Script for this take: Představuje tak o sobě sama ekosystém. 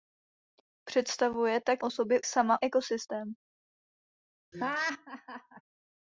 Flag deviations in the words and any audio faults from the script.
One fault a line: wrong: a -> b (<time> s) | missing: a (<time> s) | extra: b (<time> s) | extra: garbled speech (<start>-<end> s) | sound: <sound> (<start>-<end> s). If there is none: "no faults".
sound: laugh (4.5-5.6 s)